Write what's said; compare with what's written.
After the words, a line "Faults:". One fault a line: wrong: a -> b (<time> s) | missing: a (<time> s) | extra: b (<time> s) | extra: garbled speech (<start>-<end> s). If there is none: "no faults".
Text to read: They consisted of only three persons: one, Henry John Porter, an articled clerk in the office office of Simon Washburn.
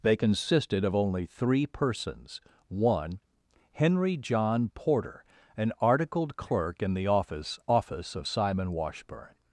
They consisted of only three persons: one, Henry John Porter, an articled clerk in the office office of Simon Washburn.
Faults:
no faults